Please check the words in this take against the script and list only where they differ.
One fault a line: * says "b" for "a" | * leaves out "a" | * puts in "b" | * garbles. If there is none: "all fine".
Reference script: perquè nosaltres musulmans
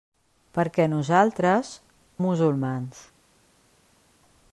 all fine